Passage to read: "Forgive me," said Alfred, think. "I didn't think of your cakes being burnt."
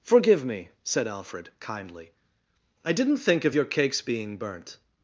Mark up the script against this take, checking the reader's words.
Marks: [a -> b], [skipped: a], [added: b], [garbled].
"Forgive me," said Alfred, [think. -> kindly] "I didn't think of your cakes being burnt."